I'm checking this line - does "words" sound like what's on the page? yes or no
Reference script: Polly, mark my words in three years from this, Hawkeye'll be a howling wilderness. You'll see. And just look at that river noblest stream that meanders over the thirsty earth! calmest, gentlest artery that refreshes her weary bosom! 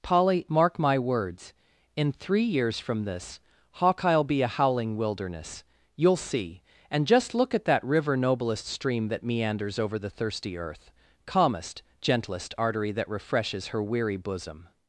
yes